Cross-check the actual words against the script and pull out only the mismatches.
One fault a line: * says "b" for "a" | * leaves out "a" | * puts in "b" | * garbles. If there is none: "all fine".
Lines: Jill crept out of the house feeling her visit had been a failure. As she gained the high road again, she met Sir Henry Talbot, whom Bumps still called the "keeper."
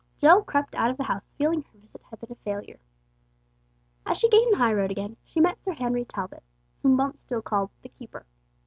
all fine